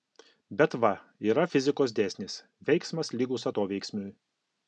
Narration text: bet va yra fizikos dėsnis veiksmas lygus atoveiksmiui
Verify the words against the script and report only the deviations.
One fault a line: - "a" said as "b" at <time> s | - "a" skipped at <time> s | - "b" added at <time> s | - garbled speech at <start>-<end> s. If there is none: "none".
none